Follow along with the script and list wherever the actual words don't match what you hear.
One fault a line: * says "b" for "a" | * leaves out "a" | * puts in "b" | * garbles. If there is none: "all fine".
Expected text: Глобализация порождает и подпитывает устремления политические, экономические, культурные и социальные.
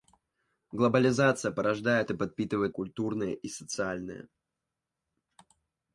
* leaves out "устремления политические экономические"